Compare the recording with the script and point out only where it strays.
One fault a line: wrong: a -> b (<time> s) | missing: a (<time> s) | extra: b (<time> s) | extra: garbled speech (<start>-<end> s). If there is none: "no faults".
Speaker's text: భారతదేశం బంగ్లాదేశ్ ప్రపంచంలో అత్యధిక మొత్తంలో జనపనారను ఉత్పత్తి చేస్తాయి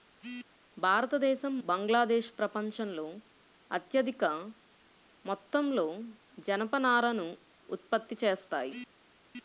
no faults